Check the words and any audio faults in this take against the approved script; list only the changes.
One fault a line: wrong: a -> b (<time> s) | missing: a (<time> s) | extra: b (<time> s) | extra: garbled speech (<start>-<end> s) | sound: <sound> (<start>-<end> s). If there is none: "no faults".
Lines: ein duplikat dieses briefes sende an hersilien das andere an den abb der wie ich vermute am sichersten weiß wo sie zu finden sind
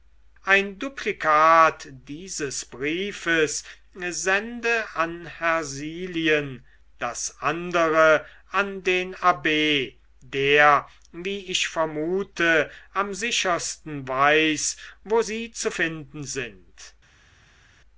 no faults